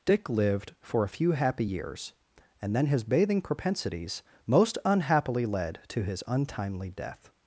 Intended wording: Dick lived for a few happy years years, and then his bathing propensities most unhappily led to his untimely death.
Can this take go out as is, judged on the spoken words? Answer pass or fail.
fail